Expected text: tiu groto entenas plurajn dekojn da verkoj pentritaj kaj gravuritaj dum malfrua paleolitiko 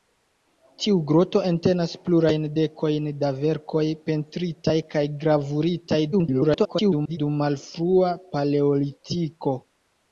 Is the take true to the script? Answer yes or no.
no